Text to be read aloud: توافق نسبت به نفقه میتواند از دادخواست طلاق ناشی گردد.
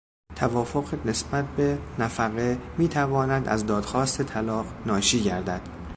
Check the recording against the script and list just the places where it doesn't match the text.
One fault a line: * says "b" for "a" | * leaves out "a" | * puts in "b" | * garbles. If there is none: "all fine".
all fine